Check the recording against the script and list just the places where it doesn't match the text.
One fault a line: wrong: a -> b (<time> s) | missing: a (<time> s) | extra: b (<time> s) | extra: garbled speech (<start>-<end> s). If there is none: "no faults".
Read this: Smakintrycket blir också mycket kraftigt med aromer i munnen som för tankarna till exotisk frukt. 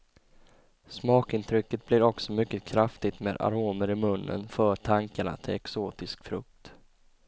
missing: som (4.5 s)